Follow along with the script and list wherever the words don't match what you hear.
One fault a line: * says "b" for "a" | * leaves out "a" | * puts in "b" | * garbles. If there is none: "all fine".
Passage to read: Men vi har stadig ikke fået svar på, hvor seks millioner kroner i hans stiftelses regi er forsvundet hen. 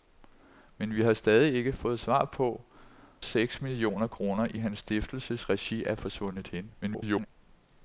* leaves out "hvor"
* garbles